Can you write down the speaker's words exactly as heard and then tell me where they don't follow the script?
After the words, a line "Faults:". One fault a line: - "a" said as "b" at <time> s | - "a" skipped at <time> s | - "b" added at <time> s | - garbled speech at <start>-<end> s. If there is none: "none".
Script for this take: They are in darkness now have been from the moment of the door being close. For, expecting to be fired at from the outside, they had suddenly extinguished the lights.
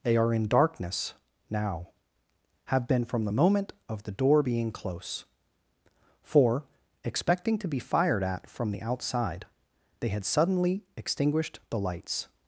They are in darkness now have been from the moment of the door being close. For, expecting to be fired at from the outside, they had suddenly extinguished the lights.
Faults:
none